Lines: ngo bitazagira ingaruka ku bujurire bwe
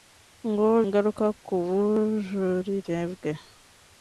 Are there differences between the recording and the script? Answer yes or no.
yes